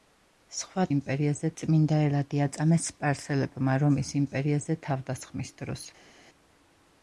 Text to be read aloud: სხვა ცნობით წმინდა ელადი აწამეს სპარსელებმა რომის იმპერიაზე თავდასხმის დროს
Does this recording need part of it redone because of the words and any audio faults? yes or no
yes